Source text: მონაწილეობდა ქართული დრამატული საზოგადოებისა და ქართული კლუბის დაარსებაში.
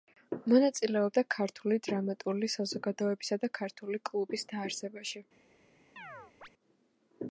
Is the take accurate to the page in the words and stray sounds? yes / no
no